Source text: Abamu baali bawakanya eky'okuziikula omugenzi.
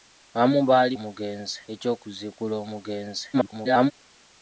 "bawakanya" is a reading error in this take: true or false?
true